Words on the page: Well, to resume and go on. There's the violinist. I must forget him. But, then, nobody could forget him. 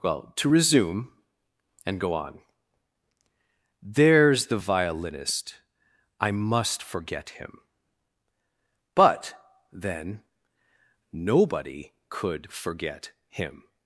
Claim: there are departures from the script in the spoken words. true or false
false